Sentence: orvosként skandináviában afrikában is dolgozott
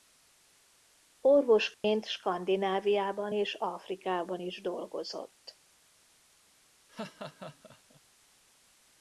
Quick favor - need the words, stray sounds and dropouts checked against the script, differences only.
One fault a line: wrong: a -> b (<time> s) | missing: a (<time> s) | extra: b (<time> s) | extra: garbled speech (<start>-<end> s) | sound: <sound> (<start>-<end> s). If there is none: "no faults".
sound: dropout (1.7-1.8 s)
extra: és (3.3 s)
sound: laugh (6.9-8.0 s)